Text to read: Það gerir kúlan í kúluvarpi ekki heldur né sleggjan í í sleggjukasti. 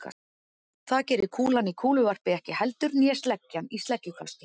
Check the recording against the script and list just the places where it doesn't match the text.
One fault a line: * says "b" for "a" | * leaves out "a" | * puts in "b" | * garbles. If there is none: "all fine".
* leaves out "í"